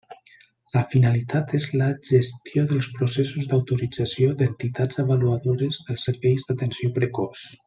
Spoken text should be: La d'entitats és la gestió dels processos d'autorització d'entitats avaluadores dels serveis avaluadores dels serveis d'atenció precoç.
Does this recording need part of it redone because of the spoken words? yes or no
yes